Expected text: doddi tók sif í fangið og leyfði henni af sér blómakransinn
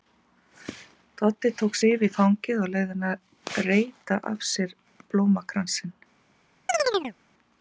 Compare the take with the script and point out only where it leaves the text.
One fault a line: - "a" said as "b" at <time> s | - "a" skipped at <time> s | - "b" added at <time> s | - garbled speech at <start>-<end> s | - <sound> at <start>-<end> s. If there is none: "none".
- "að reyta" added at 3.1 s
- chirp at 6.7-7.2 s